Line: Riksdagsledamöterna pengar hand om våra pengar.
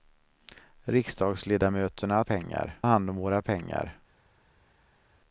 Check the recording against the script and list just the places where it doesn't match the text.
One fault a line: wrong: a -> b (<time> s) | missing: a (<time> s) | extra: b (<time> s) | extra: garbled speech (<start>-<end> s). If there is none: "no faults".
no faults